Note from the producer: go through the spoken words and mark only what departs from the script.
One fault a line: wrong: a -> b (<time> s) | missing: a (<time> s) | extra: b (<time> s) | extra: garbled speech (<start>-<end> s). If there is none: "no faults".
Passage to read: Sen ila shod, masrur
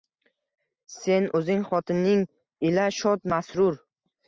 extra: o'zing xotining (1.4 s)